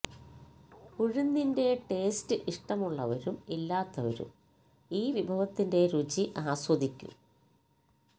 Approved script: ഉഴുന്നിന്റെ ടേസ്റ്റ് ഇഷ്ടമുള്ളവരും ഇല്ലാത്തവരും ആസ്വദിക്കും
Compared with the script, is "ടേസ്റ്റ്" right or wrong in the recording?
right